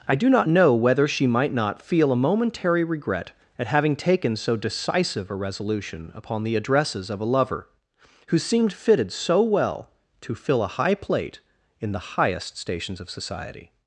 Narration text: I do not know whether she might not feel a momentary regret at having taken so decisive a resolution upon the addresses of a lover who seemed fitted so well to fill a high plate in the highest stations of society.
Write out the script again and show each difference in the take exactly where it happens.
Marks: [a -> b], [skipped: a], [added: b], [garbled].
I do not know whether she might not feel a momentary regret at having taken so decisive a resolution upon the addresses of a lover who seemed fitted so well to fill a high plate in the highest stations of society.